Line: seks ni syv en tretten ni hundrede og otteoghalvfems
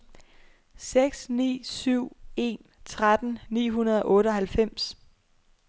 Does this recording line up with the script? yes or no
yes